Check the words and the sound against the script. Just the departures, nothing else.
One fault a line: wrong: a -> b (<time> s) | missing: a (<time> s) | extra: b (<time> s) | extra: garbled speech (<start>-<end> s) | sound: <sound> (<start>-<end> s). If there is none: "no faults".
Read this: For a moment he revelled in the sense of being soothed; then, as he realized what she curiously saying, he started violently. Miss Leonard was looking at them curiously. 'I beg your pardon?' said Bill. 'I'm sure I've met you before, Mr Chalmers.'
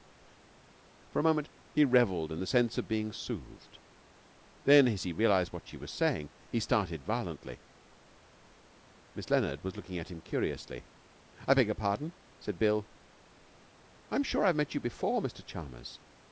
wrong: curiously -> was (5.8 s)
wrong: them -> him (10.1 s)